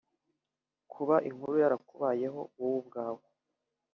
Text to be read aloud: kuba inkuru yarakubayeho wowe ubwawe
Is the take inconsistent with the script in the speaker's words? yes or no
no